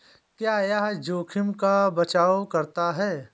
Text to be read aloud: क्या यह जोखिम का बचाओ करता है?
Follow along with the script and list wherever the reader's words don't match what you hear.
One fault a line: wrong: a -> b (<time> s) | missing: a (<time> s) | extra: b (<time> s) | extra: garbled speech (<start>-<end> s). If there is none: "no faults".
no faults